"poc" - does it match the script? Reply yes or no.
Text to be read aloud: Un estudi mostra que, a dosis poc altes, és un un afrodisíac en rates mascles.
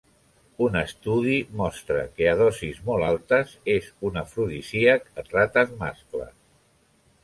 no